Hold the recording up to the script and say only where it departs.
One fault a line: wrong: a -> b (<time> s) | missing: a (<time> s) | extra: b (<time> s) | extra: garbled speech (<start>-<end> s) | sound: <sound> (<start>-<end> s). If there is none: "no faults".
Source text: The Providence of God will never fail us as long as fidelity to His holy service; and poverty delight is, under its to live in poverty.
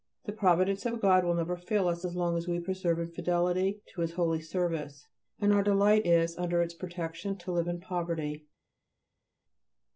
extra: we persevere in (2.5 s)
wrong: poverty -> our (5.5 s)
extra: protection (6.7 s)